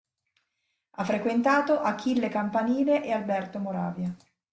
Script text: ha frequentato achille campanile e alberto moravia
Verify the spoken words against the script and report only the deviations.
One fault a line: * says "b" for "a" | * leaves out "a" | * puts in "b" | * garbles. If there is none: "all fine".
all fine